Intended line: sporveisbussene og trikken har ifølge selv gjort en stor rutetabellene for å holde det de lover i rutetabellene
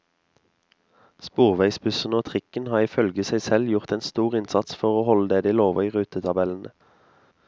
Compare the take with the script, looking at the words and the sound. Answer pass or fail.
fail